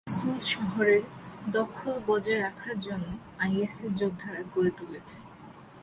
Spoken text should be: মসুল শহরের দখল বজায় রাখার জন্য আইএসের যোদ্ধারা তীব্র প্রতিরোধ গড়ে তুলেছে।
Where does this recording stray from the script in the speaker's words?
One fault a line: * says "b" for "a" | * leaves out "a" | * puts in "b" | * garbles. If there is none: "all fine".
* leaves out "তীব্র প্রতিরোধ"